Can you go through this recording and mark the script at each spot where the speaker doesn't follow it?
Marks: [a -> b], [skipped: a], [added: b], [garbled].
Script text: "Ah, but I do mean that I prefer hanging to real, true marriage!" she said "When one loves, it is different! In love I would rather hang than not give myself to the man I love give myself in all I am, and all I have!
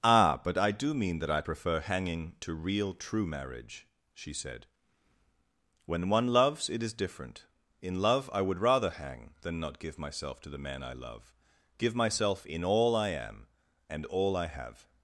"Ah, but I do mean that I prefer hanging to real, true marriage!" she said "When one loves, it is different! In love I would rather hang than not give myself to the man I love give myself in all I am, and all I have!